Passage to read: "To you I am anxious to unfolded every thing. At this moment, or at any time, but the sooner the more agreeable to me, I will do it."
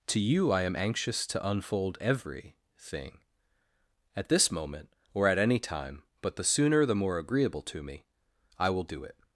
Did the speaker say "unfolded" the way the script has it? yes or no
no